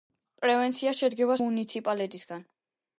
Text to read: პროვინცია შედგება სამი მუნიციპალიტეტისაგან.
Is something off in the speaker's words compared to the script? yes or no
yes